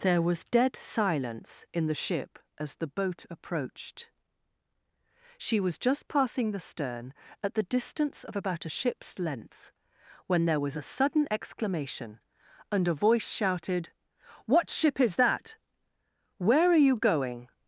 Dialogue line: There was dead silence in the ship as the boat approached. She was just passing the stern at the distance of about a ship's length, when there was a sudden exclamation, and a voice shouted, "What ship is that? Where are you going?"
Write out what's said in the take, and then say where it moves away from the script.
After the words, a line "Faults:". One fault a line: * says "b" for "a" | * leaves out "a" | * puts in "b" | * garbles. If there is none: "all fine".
There was dead silence in the ship as the boat approached. She was just passing the stern at the distance of about a ship's length, when there was a sudden exclamation, and a voice shouted, "What ship is that? Where are you going?"
Faults:
all fine